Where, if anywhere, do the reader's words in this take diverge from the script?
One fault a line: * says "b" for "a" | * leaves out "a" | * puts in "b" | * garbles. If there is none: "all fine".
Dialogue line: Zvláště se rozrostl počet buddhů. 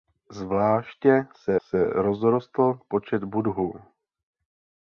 * puts in "se"